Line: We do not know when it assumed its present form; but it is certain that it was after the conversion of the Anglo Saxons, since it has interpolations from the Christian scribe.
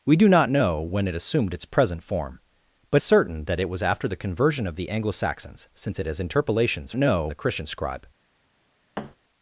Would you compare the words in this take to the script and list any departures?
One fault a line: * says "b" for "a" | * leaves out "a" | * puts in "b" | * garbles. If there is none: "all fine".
* leaves out "it is"
* says "know" for "from"